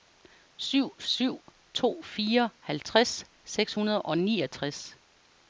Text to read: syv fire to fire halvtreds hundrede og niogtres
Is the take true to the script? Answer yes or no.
no